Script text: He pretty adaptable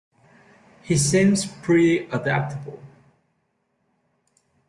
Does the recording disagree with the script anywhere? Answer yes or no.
yes